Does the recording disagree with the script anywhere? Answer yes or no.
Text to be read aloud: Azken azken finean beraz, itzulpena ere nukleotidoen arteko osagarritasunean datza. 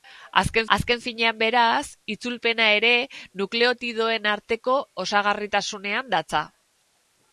no